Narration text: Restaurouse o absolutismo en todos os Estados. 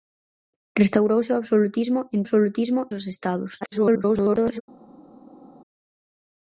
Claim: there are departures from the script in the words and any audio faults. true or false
true